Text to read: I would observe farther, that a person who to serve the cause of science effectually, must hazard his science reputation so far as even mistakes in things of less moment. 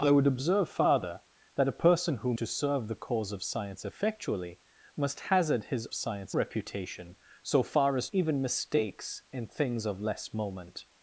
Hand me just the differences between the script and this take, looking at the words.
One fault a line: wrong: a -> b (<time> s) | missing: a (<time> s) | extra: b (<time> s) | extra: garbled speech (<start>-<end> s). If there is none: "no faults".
no faults